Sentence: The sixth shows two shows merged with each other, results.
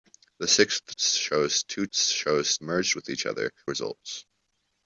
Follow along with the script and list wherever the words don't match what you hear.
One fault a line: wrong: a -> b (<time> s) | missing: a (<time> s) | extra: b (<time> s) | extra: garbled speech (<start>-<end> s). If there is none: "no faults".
no faults